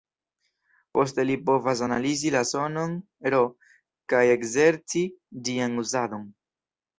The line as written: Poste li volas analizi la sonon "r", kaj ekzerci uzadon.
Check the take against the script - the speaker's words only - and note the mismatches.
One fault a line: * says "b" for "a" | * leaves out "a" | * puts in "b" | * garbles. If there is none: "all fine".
* says "povas" for "volas"
* puts in "ĝian"